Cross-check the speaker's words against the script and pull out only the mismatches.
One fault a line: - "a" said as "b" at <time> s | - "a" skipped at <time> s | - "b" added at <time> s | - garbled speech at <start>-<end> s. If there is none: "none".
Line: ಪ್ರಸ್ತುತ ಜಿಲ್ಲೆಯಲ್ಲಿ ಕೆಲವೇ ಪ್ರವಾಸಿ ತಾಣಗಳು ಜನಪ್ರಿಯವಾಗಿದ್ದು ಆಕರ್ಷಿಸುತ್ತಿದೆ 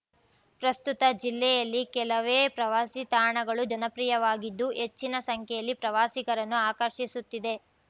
- "ಹೆಚ್ಚಿನ ಸಂಖ್ಯೆಯಲ್ಲಿ ಪ್ರವಾಸಿಗರನ್ನು" added at 4.8 s